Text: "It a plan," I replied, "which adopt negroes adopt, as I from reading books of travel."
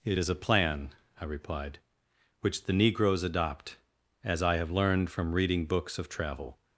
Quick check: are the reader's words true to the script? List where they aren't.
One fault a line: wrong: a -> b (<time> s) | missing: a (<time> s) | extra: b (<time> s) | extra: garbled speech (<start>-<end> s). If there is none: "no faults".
extra: is (0.2 s)
wrong: adopt -> the (2.6 s)
extra: have learned (4.6 s)